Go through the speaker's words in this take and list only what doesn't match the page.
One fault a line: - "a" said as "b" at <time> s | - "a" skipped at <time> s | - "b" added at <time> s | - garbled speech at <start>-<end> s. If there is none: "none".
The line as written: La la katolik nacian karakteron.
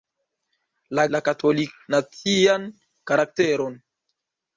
none